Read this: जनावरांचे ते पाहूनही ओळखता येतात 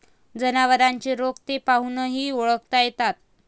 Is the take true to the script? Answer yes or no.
no